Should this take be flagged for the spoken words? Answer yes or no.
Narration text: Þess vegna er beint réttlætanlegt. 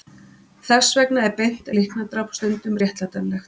yes